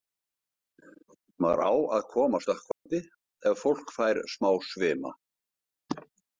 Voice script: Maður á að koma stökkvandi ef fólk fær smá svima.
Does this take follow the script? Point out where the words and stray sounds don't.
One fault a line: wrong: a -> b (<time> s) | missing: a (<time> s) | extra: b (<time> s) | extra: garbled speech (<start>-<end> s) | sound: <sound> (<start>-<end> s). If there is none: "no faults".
sound: dropout (2.7-2.9 s)